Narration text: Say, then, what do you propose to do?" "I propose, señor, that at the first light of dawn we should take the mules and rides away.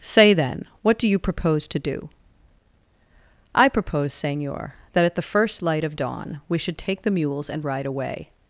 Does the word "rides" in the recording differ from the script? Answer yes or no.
yes